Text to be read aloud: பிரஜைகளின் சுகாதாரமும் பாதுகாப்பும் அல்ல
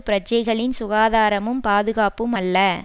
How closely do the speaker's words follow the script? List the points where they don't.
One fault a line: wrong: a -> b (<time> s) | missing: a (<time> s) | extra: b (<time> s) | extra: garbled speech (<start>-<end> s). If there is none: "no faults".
no faults